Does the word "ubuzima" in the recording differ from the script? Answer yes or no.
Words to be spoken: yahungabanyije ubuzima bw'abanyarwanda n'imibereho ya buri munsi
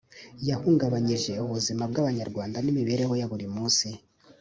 no